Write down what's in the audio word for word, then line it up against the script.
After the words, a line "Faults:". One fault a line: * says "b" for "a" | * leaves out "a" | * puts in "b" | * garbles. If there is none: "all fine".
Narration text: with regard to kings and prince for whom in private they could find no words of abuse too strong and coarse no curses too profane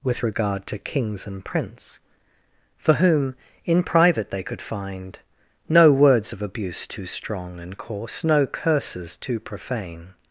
with regard to kings and prince for whom in private they could find no words of abuse too strong and coarse no curses too profane
Faults:
all fine